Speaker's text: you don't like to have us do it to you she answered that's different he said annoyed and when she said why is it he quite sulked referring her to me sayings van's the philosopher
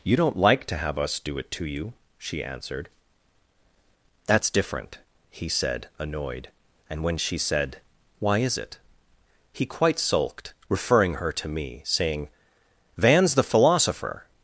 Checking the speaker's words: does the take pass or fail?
fail